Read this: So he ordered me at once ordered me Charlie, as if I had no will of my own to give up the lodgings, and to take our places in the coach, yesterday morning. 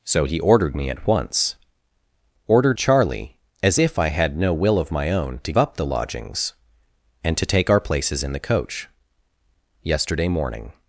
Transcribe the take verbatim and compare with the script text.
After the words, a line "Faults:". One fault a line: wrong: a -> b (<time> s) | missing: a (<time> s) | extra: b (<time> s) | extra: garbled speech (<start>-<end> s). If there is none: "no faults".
So he ordered me at once ordered Charlie, as if I had no will of my own to up the lodgings, and to take our places in the coach, yesterday morning.
Faults:
missing: me (2.8 s)
missing: give (5.5 s)